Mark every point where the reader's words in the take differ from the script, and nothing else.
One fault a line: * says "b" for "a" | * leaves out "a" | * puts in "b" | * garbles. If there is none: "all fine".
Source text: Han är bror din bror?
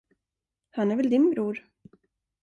* says "väl" for "bror"